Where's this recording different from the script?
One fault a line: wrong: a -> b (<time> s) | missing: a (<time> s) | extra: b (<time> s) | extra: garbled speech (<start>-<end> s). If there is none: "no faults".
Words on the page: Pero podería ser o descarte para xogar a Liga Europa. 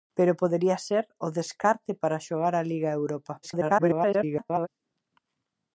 extra: garbled speech (3.4-4.7 s)